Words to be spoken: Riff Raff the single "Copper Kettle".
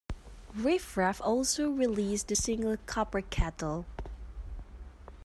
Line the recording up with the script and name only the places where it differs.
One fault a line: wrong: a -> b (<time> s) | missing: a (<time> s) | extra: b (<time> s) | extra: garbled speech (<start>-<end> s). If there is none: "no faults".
extra: also released (1.2 s)